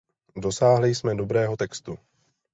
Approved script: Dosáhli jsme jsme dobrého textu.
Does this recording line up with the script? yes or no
no